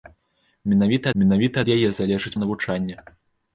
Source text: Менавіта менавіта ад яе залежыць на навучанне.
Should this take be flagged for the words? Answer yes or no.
no